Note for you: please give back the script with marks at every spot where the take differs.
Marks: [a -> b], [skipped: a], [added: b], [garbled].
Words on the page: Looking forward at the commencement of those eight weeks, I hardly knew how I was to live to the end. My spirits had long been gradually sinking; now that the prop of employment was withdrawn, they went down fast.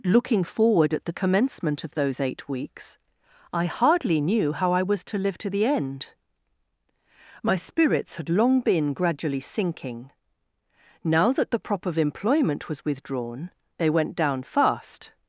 Looking forward at the commencement of those eight weeks, I hardly knew how I was to live to the end. My spirits had long been gradually sinking; now that the prop of employment was withdrawn, they went down fast.